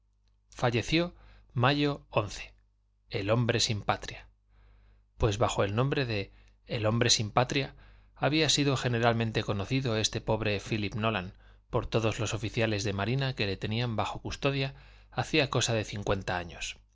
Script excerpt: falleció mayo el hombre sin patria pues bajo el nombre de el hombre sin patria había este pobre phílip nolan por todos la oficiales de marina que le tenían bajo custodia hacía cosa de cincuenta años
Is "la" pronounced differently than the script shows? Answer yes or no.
yes